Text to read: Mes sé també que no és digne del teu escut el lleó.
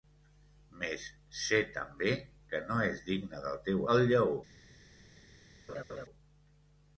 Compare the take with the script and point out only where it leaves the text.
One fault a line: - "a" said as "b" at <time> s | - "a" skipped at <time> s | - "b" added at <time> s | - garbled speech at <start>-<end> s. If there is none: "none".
- "escut" skipped at 3.8 s